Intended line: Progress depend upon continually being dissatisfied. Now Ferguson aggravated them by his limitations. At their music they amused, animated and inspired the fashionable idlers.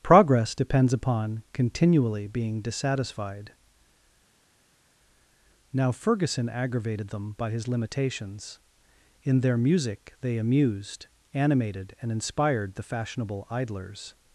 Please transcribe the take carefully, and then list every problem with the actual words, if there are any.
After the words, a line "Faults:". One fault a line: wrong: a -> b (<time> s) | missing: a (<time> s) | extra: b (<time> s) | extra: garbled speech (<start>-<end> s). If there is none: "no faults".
Progress depends upon continually being dissatisfied. Now Ferguson aggravated them by his limitations. In their music they amused, animated and inspired the fashionable idlers.
Faults:
wrong: depend -> depends (0.5 s)
wrong: At -> In (9.2 s)